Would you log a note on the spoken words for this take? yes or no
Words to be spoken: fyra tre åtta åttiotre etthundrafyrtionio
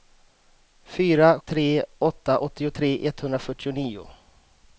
no